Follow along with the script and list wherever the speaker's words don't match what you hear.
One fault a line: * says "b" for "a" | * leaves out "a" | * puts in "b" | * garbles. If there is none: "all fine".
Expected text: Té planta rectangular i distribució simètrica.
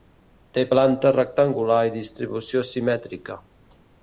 all fine